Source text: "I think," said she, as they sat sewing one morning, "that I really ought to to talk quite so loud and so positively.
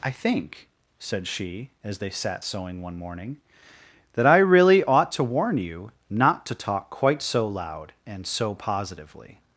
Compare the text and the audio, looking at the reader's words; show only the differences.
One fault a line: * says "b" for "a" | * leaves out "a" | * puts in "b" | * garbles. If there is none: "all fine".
* puts in "warn you not"